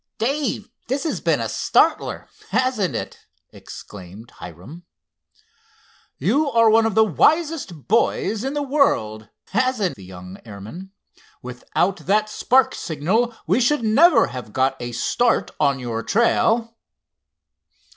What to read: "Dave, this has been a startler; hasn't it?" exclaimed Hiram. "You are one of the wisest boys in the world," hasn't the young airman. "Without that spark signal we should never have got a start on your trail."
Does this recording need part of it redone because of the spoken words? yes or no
no